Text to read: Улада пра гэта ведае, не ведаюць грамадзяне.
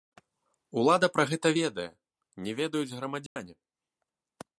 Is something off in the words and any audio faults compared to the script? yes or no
yes